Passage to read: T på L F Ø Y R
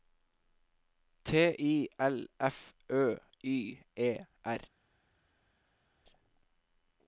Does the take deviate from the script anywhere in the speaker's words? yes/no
yes